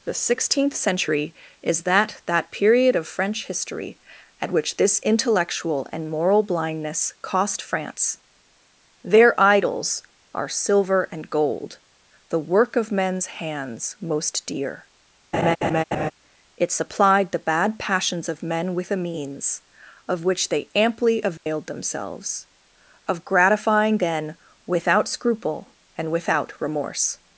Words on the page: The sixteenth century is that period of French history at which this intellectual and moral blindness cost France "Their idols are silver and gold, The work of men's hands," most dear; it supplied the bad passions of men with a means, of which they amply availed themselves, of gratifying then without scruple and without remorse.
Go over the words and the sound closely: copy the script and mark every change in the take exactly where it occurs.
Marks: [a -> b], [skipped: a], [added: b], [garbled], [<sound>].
The sixteenth century is that [added: that] period of French history at which this intellectual and moral blindness cost France "Their idols are silver and gold, The work of men's hands," most dear; [laugh] it supplied the bad passions of men with a means, of which they amply availed [dropout] themselves, of gratifying then without scruple and without remorse.